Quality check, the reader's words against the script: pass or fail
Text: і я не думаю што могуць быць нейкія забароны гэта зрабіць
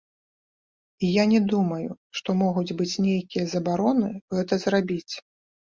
pass